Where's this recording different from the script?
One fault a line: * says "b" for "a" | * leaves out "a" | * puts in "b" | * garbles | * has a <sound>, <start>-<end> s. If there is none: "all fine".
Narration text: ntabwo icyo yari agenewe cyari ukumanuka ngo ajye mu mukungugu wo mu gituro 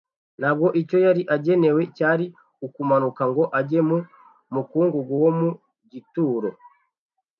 all fine